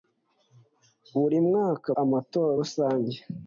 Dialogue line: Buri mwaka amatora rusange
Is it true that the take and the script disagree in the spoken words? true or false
false